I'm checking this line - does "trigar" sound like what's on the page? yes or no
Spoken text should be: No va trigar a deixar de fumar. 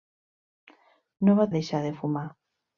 no